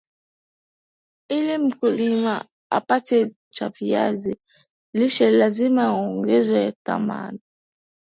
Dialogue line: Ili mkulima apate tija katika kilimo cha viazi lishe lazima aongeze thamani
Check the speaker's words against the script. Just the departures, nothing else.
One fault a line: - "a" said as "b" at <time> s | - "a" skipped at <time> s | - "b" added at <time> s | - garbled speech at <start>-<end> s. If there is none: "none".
- "tija katika kilimo" skipped at 3.3 s